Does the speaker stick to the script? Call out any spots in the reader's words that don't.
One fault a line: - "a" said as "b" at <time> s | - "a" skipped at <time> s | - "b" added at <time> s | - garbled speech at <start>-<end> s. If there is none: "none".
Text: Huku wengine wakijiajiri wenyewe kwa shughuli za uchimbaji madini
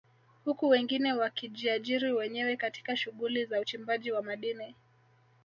- "kwa" said as "katika" at 2.6 s
- "wa" added at 4.1 s